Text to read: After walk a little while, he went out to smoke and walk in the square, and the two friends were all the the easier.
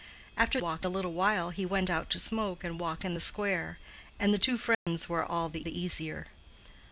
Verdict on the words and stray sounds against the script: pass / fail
fail